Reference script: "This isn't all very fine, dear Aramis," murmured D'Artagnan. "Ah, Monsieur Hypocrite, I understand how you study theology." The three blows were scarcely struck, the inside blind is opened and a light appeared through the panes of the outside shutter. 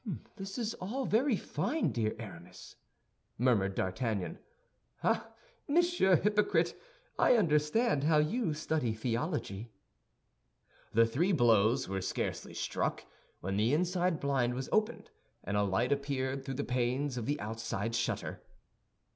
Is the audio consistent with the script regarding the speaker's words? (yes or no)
no